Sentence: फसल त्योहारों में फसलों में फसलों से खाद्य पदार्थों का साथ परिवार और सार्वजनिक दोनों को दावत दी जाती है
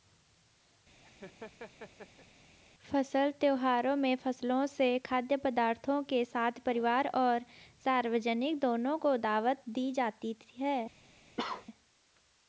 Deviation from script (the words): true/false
true